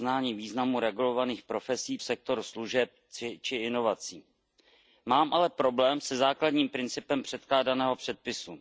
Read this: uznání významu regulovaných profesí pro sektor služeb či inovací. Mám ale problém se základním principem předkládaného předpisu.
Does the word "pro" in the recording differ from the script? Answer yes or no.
yes